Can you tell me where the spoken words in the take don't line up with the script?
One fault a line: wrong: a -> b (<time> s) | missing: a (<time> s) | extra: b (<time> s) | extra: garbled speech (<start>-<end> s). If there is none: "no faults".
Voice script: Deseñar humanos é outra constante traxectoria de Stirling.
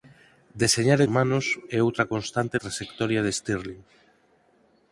no faults